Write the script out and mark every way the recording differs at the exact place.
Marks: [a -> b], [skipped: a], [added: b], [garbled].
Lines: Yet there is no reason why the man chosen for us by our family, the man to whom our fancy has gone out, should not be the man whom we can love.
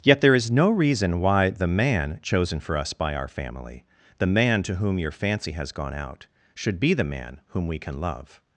Yet there is no reason why the man chosen for us by our family, the man to whom [our -> your] fancy has gone out, should [skipped: not] be the man whom we can love.